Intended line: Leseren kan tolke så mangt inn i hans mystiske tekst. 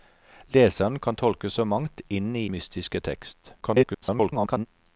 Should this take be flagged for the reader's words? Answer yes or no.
yes